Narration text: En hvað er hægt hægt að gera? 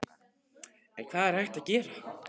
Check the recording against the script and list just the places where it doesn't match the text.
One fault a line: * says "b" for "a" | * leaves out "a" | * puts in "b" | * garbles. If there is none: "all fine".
* leaves out "hægt"